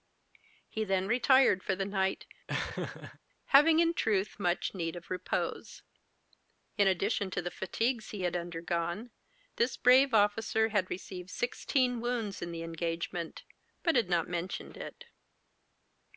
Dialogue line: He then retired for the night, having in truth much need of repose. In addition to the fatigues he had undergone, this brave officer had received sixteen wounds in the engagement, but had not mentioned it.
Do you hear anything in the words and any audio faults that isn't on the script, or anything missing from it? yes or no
yes